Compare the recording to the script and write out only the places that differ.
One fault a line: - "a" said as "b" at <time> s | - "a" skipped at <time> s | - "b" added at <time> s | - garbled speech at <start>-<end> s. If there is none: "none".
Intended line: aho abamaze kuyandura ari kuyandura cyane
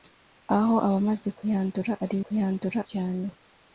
none